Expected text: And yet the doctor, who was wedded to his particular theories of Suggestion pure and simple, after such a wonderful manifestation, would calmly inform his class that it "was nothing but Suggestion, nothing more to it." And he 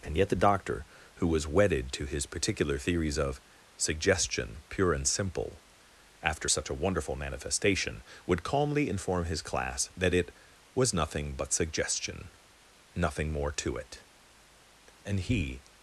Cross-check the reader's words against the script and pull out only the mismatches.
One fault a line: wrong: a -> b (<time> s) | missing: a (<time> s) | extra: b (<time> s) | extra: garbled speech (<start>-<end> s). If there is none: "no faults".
no faults